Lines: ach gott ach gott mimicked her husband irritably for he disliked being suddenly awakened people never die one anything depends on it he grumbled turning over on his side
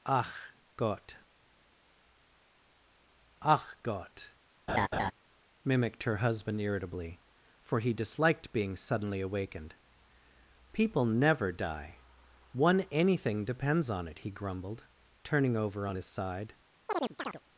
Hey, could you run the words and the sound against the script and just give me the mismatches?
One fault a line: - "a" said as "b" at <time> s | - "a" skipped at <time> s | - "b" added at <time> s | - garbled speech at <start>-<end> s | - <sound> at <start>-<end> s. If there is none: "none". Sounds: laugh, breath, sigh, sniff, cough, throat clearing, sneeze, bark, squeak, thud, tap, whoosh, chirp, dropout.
- laugh at 4.7-5.1 s
- chirp at 16.9-17.4 s